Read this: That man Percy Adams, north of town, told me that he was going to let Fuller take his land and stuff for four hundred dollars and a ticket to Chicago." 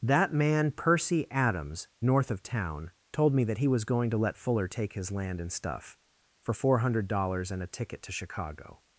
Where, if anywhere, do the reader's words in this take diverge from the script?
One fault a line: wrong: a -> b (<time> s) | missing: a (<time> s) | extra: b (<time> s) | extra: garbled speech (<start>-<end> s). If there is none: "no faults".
no faults